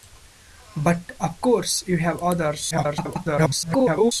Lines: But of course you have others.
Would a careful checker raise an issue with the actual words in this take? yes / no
yes